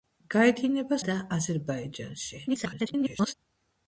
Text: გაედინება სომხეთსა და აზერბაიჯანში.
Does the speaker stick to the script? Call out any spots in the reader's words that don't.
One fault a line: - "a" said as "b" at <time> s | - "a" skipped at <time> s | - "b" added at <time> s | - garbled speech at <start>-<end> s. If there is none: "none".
- "სომხეთსა" skipped at 1.0 s
- garbled speech at 2.5-3.3 s